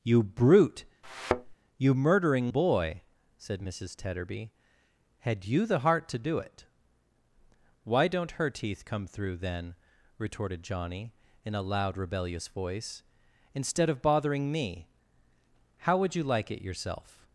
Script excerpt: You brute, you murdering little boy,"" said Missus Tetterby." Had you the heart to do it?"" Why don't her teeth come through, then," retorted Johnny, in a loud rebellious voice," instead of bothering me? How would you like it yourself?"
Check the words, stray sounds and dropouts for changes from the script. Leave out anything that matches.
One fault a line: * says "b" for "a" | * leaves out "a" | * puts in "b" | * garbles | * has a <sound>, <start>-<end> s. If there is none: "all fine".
* has a thud, 1.0-1.6 s
* leaves out "little"